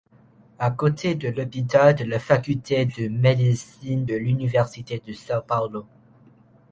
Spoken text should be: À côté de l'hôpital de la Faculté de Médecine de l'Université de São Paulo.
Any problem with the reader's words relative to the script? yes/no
no